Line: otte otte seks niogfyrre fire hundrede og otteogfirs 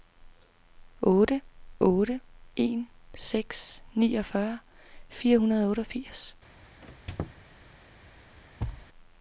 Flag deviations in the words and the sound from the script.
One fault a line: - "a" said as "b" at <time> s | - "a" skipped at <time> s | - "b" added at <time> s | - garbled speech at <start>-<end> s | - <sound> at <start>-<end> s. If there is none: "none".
- "en" added at 2.6 s
- squeak at 6.8-7.4 s
- thud at 8.6-8.9 s